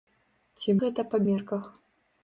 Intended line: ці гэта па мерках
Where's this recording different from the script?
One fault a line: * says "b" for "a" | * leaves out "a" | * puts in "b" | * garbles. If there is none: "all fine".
all fine